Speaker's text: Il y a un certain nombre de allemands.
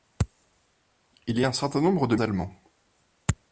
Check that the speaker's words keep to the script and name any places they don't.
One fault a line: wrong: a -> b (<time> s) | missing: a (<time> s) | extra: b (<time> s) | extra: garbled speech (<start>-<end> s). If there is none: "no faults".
no faults